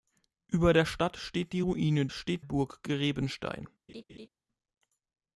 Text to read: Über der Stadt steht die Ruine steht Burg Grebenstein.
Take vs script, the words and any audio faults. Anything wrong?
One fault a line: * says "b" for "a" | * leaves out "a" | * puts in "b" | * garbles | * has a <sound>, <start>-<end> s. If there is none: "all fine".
* has a laugh, 3.9-4.3 s